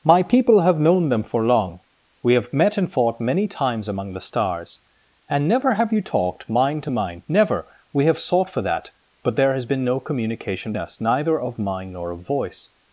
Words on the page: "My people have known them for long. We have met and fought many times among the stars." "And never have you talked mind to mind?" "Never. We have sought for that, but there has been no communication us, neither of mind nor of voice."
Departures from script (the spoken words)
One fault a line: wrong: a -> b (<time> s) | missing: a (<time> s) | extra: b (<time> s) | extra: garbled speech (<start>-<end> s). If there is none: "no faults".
no faults